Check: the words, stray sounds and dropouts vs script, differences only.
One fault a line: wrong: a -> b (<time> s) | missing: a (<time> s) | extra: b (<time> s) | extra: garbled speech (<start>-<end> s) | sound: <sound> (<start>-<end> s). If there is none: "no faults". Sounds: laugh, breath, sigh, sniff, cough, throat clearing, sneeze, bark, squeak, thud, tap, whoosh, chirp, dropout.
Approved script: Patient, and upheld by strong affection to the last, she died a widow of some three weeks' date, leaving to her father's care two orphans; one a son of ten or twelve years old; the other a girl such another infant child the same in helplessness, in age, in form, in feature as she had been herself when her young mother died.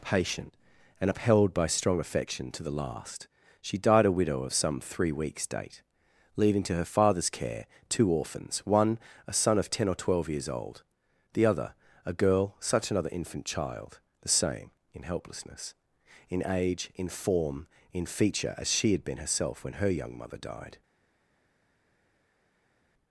no faults